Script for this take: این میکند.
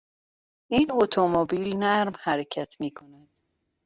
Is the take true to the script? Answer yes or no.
no